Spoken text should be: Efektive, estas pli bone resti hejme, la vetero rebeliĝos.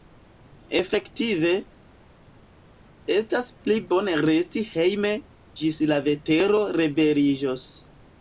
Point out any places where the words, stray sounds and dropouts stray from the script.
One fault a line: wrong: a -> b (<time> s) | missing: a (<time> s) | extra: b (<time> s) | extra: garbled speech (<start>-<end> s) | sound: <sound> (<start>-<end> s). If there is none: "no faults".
extra: ĝis (5.6 s)